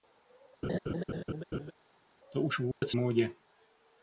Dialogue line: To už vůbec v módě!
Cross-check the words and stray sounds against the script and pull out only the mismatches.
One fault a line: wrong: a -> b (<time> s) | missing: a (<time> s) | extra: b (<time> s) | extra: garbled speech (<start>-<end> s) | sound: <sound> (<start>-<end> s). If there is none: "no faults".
sound: laugh (0.6-1.7 s)
sound: dropout (2.7-2.8 s)